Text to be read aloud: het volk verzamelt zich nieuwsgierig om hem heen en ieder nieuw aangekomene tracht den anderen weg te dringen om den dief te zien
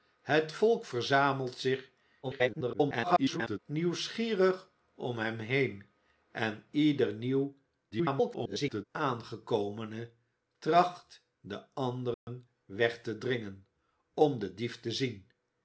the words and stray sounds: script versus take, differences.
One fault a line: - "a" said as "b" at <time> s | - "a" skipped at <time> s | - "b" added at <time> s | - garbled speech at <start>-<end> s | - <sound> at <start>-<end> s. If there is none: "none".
- garbled speech at 2.2-3.6 s
- garbled speech at 7.9-8.8 s
- dropout at 12.1-12.3 s